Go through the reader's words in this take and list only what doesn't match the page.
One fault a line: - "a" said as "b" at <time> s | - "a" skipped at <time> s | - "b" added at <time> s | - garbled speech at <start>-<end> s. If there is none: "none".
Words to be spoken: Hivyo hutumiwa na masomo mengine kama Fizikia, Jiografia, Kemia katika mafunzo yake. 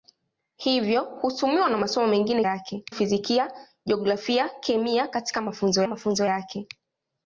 - "kama" said as "yake" at 2.4 s
- "mafunzo" added at 5.9 s